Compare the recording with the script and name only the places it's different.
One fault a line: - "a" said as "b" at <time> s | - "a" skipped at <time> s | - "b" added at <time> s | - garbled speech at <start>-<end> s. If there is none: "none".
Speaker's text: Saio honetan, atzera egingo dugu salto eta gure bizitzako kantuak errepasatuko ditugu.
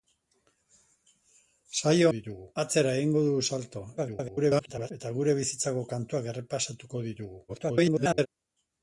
- "honetan" said as "ditugu" at 2.1 s
- garbled speech at 4.0-4.9 s
- garbled speech at 7.5-8.3 s